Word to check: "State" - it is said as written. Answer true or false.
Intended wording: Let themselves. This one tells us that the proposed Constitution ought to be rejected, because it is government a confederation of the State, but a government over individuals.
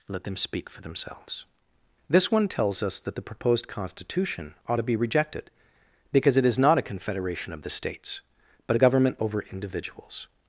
false